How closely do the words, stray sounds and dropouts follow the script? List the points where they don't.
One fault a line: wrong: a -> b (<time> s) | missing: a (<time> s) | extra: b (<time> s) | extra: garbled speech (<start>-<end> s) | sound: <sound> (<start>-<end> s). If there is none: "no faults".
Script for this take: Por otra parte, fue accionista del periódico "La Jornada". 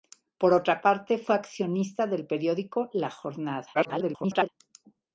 extra: garbled speech (3.7-4.5 s)